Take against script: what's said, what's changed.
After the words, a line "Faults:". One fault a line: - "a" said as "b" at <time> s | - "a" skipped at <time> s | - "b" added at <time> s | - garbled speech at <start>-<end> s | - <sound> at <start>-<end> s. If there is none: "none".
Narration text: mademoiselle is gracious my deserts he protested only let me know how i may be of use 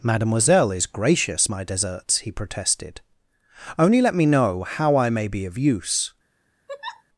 mademoiselle is gracious my deserts he protested only let me know how i may be of use
Faults:
- laugh at 6.7-7.0 s